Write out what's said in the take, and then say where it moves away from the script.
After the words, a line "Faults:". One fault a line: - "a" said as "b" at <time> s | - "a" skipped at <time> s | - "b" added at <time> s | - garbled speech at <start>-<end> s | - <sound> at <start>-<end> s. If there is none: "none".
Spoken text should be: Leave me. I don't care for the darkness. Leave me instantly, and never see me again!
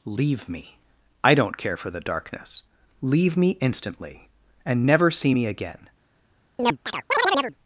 Leave me. I don't care for the darkness. Leave me instantly, and never see me again!
Faults:
- chirp at 6.6-7.6 s